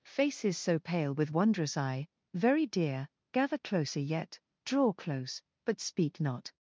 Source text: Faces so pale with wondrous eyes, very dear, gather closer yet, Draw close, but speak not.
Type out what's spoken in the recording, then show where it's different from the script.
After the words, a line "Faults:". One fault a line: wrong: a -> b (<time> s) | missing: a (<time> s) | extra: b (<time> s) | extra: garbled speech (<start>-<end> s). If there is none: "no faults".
Faces so pale with wondrous eye, very dear, gather closer yet, Draw close, but speak not.
Faults:
wrong: eyes -> eye (1.8 s)